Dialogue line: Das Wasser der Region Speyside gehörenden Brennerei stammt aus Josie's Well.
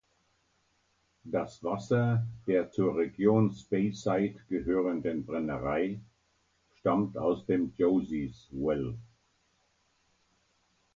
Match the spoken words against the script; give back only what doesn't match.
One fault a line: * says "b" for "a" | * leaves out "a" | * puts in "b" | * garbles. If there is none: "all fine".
* puts in "zur"
* puts in "dem"